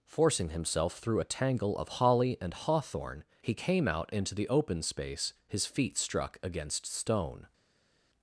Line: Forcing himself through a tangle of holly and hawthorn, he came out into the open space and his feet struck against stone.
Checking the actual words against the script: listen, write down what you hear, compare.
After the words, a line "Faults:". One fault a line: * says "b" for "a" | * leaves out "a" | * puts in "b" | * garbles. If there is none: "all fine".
Forcing himself through a tangle of holly and hawthorn, he came out into the open space his feet struck against stone.
Faults:
* leaves out "and"